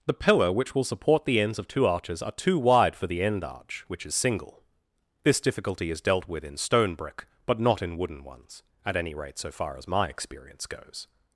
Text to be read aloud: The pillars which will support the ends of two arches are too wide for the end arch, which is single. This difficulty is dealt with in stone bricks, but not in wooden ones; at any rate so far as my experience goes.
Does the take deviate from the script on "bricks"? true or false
true